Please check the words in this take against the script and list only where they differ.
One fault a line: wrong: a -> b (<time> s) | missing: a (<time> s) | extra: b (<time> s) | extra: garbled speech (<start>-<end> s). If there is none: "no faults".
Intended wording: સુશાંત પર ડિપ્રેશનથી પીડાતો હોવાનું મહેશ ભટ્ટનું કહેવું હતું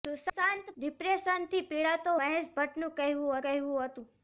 missing: પર (0.7 s)
missing: હોવાનું (2.2 s)
extra: કહેવું (3.4 s)